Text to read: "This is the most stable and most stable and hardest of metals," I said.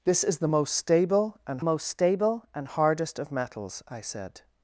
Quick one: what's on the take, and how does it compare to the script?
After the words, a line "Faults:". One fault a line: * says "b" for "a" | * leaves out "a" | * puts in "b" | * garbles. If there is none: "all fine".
"This is the most stable and most stable and hardest of metals," I said.
Faults:
all fine